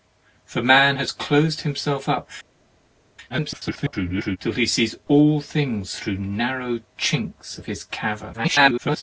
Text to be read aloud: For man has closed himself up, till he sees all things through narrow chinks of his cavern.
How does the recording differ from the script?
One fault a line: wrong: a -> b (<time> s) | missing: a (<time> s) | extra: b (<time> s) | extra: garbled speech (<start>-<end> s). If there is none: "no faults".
extra: garbled speech (3.3-4.4 s)
extra: garbled speech (8.3-9.0 s)